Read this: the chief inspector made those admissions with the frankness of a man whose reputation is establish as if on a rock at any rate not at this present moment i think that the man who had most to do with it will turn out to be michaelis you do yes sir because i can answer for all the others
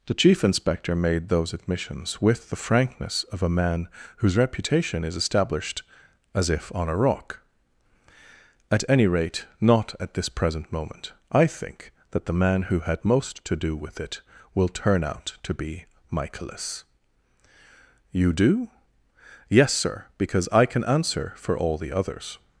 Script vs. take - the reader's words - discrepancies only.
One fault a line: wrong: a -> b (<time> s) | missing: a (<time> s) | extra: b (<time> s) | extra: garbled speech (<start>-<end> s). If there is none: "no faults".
wrong: establish -> established (5.2 s)